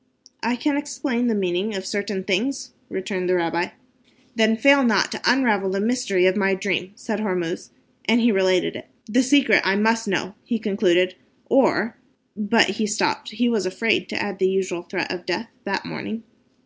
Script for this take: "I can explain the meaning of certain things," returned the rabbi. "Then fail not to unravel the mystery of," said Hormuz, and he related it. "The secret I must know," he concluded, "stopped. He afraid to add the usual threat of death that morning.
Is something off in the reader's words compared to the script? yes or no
yes